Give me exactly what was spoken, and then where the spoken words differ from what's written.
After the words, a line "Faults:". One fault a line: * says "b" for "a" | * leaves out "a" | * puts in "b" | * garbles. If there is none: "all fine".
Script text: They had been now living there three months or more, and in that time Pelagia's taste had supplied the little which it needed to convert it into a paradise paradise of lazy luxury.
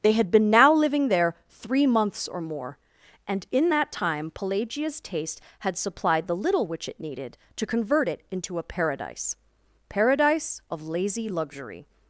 They had been now living there three months or more, and in that time Pelagia's taste had supplied the little which it needed to convert it into a paradise paradise of lazy luxury.
Faults:
all fine